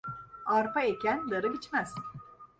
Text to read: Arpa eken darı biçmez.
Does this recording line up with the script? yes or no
yes